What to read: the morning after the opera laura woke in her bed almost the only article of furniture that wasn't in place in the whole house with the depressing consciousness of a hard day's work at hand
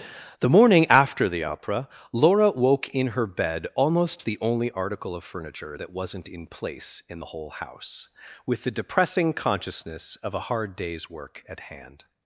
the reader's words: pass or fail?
pass